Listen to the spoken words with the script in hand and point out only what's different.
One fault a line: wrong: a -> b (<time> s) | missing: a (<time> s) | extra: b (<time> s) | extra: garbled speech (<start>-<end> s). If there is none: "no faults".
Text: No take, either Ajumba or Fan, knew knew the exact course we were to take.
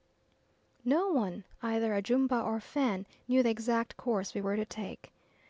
wrong: take -> one (1.1 s)
missing: knew (3.4 s)